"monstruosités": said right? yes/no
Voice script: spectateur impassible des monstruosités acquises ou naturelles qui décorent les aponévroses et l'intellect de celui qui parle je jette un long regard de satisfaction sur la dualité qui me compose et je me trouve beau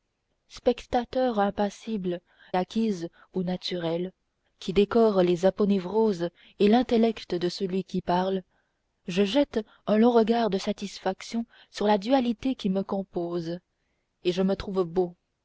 no